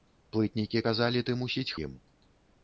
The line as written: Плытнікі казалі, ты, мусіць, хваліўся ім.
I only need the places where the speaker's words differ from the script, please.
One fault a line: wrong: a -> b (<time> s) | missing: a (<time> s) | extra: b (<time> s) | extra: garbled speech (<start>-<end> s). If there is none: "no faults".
missing: хваліўся (1.7 s)